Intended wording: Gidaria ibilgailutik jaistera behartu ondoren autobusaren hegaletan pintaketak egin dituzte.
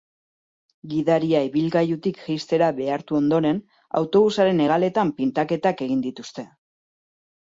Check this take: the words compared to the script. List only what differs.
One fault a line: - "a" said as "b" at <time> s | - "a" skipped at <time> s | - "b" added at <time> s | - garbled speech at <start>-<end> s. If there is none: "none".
none